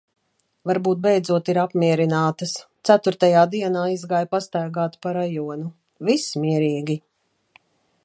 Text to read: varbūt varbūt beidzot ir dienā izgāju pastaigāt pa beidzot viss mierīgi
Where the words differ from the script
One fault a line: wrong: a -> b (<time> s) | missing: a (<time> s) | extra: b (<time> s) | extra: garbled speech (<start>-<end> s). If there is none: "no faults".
missing: varbūt (1.0 s)
extra: apmierinātas ceturtajā (1.6 s)
wrong: beidzot -> rajonu (5.2 s)